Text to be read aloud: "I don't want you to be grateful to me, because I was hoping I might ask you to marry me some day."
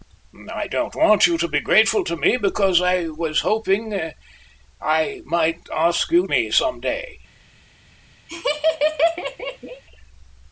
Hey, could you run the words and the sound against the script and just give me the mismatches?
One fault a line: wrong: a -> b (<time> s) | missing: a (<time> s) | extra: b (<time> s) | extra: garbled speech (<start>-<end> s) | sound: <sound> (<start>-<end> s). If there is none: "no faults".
missing: to marry (6.3 s)
sound: laugh (8.3-9.8 s)